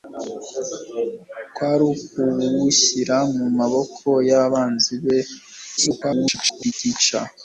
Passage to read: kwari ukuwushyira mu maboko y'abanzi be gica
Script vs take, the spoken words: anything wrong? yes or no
yes